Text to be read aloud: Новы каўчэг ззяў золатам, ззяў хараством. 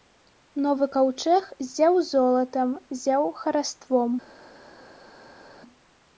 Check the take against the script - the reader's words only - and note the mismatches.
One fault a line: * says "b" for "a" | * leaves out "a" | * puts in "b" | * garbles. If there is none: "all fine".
all fine